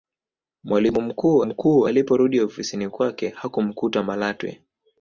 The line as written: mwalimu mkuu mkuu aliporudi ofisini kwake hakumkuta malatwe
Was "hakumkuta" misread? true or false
false